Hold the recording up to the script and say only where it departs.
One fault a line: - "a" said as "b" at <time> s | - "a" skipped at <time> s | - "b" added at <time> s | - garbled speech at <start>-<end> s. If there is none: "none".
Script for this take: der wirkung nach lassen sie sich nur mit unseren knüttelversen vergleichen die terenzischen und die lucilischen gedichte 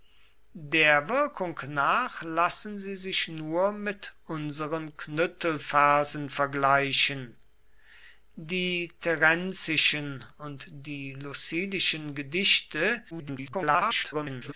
- garbled speech at 13.1-14.5 s